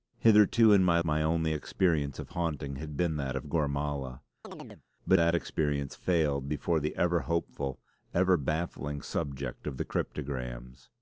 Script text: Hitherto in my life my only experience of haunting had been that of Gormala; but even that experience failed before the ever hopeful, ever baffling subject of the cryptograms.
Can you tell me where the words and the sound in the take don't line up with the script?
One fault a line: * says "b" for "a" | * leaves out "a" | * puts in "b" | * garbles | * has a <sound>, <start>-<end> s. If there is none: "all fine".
* leaves out "life"
* has a chirp, 4.4-4.8 s
* leaves out "even"